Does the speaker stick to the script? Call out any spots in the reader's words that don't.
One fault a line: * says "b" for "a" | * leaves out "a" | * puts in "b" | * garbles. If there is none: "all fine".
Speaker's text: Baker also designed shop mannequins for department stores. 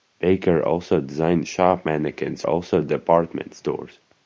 * says "also" for "for"